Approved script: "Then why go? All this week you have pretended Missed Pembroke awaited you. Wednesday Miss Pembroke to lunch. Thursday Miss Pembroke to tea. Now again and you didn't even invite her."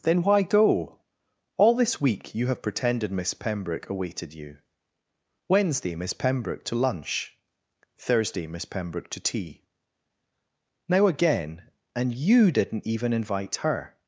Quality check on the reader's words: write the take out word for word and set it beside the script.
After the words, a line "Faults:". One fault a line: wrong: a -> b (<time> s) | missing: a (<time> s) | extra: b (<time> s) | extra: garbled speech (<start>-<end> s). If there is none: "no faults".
"Then why go? All this week you have pretended Miss Pembroke awaited you. Wednesday Miss Pembroke to lunch. Thursday Miss Pembroke to tea. Now again and you didn't even invite her."
Faults:
wrong: Missed -> Miss (3.1 s)